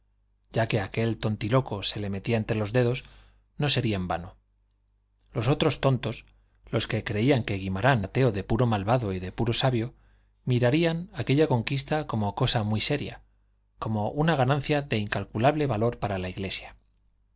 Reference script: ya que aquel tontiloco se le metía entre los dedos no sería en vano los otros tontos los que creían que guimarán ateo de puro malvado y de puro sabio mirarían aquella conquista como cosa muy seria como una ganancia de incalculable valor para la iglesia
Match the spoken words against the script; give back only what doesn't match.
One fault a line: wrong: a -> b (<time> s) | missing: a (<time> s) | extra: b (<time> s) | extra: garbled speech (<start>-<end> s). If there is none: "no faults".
no faults